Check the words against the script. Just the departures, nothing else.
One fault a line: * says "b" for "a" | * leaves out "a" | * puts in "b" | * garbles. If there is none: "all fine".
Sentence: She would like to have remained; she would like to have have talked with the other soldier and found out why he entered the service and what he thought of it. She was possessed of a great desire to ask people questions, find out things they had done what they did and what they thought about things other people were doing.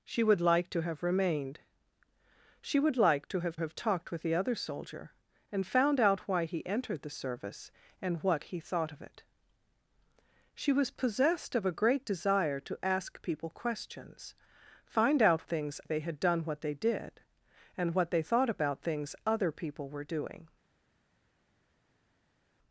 all fine